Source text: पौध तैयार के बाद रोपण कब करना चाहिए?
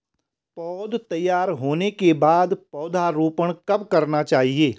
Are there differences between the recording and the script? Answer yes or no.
yes